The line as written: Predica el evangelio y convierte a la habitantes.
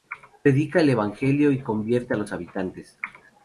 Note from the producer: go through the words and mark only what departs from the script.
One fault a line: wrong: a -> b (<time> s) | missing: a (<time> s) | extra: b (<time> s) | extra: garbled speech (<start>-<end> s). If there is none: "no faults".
wrong: la -> los (2.2 s)